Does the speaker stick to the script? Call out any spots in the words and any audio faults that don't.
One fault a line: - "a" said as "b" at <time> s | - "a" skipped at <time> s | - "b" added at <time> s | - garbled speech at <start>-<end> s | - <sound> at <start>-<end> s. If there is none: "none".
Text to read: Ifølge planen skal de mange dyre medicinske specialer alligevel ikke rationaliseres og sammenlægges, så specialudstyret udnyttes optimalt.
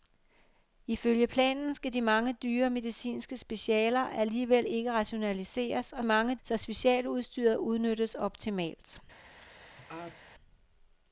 - "sammenlægges" said as "mange" at 6.0 s
- sneeze at 9.3-10.2 s